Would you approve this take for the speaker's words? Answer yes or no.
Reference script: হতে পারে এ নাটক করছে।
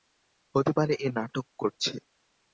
yes